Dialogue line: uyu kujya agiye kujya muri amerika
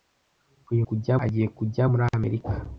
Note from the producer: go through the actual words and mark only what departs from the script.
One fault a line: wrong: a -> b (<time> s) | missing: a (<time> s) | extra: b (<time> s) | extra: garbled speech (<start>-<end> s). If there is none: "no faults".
no faults